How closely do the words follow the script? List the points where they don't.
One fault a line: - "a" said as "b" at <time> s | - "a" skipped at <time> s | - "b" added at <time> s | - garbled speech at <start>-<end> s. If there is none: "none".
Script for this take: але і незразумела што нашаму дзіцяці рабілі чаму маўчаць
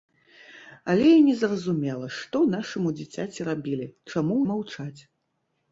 none